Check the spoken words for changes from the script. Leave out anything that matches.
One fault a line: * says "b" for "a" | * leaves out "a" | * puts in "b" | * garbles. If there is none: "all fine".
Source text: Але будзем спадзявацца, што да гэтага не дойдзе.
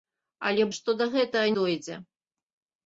* leaves out "будзем спадзявацца"
* leaves out "не"